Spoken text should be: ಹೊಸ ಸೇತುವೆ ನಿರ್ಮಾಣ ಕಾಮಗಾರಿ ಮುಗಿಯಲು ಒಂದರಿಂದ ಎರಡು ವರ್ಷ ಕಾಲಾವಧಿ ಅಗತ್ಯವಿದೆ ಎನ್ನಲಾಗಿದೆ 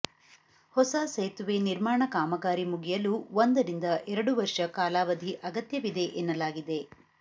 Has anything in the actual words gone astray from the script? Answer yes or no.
no